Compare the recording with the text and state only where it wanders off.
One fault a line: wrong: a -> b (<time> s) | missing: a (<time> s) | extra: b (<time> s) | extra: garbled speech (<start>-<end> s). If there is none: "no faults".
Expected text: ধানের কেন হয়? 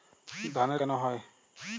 no faults